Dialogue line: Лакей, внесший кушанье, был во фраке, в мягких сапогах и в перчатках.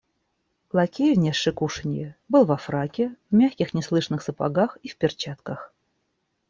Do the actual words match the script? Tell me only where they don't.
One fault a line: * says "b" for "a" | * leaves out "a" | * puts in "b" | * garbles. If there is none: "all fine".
* puts in "неслышных"